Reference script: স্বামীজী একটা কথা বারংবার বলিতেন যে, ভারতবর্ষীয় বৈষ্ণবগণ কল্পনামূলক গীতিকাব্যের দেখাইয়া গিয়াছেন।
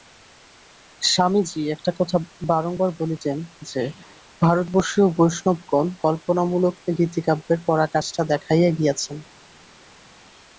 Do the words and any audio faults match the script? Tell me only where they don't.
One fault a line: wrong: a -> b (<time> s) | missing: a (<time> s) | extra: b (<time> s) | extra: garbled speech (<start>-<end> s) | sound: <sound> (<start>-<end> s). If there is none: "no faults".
extra: পরাকাষ্ঠা (7.7 s)